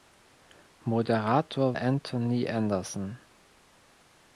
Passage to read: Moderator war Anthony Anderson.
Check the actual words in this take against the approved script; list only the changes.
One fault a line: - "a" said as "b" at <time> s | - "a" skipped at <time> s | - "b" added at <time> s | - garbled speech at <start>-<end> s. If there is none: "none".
- "war" skipped at 1.8 s